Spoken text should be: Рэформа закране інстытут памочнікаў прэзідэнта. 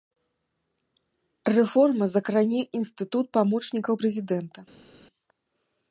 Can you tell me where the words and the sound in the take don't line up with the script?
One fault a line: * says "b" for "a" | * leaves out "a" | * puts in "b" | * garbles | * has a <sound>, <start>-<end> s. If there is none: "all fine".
all fine